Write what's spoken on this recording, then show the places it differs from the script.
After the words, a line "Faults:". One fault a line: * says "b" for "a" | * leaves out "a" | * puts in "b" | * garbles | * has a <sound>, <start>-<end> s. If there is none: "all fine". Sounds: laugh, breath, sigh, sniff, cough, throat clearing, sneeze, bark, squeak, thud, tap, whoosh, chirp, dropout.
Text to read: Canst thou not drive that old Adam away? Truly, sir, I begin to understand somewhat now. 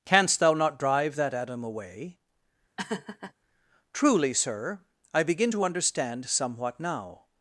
Canst thou not drive that Adam away? Truly, sir, I begin to understand somewhat now.
Faults:
* leaves out "old"
* has a laugh, 2.8-3.3 s